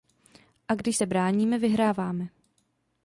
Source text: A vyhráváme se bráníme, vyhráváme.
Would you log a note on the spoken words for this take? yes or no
yes